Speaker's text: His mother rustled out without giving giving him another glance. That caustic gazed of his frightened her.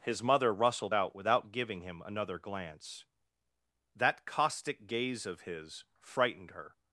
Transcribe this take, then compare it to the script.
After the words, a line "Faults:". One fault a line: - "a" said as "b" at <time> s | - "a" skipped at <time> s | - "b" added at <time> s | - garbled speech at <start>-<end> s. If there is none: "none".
His mother rustled out without giving him another glance. That caustic gaze of his frightened her.
Faults:
- "giving" skipped at 1.8 s
- "gazed" said as "gaze" at 4.9 s